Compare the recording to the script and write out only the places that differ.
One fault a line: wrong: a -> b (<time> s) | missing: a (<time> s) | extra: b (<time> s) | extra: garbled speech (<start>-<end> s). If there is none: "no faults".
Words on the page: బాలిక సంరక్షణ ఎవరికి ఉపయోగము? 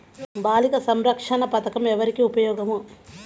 extra: పథకం (1.4 s)